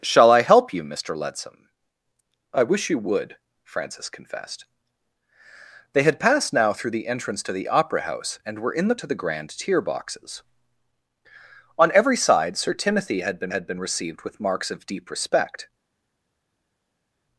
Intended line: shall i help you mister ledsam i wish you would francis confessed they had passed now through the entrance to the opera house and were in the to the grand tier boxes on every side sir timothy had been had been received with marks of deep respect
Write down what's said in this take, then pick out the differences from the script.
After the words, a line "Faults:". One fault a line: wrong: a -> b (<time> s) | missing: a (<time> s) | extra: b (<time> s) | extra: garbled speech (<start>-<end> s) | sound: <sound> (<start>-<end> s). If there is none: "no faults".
shall i help you mister ledsam i wish you would francis confessed they had passed now through the entrance to the opera house and were in the to the grand tier boxes on every side sir timothy had been had been received with marks of deep respect
Faults:
no faults